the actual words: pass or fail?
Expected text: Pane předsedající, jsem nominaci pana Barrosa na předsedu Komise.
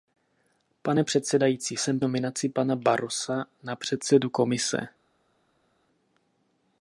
pass